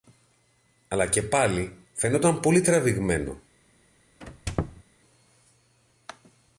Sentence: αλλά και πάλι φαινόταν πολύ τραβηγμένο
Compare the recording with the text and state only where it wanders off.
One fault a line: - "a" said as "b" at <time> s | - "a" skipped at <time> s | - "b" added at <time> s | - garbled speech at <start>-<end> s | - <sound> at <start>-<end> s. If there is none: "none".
- squeak at 4.2-4.8 s